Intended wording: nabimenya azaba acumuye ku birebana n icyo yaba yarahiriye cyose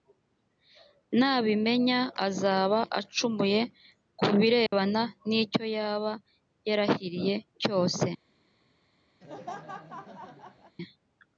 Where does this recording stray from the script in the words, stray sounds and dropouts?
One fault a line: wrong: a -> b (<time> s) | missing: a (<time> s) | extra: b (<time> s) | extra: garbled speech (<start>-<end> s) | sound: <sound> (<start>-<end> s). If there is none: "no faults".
sound: dropout (4.7-4.7 s)
sound: laugh (9.2-10.8 s)